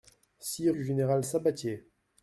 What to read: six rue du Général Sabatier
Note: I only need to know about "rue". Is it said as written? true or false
false